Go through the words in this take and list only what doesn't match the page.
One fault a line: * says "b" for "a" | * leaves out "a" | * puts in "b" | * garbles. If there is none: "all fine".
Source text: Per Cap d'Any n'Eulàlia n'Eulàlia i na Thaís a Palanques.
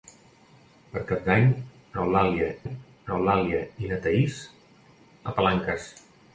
all fine